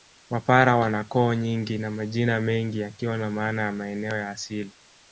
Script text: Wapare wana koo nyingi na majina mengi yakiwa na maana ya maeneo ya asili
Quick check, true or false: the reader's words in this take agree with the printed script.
true